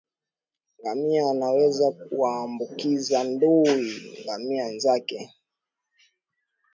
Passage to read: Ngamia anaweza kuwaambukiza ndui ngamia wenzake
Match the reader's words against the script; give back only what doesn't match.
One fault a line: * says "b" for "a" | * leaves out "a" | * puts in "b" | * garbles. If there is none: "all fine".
all fine